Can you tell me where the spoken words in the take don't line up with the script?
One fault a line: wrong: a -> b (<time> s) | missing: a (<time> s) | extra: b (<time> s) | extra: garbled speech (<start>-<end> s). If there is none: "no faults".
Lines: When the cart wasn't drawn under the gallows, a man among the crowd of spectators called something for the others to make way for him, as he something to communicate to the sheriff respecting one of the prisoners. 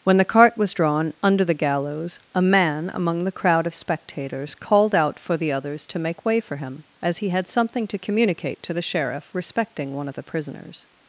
wrong: wasn't -> was (0.6 s)
wrong: something -> out (5.0 s)
extra: had (7.3 s)